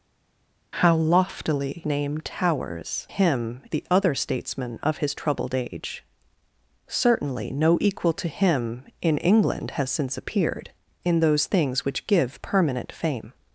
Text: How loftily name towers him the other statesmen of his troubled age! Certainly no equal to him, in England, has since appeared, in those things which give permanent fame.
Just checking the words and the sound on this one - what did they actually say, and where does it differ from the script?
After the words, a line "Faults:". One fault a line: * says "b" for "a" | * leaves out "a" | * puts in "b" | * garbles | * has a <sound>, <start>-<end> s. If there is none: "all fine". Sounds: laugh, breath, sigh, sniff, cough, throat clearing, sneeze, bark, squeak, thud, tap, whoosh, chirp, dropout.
How loftily name towers him the other statesmen of his troubled age! Certainly no equal to him, in England, has since appeared, in those things which give permanent fame.
Faults:
all fine